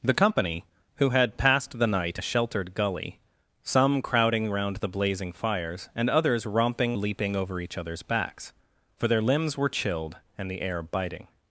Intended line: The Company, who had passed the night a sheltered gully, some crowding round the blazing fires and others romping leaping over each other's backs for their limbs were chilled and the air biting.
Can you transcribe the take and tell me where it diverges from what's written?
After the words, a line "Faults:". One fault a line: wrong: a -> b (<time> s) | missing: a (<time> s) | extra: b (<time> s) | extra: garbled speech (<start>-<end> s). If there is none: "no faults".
The Company, who had passed the night a sheltered gully, some crowding round the blazing fires and others romping leaping over each other's backs for their limbs were chilled and the air biting.
Faults:
no faults